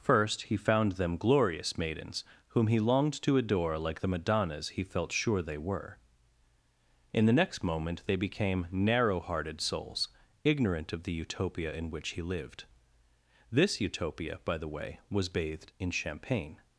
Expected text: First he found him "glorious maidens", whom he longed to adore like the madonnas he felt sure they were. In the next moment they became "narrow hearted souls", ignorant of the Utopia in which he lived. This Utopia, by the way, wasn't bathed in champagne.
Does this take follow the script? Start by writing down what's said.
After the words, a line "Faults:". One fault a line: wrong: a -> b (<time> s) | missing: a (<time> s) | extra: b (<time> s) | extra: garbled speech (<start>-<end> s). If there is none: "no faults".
First he found them "glorious maidens", whom he longed to adore like the madonnas he felt sure they were. In the next moment they became "narrow hearted souls", ignorant of the Utopia in which he lived. This Utopia, by the way, was bathed in champagne.
Faults:
wrong: him -> them (0.9 s)
wrong: wasn't -> was (15.1 s)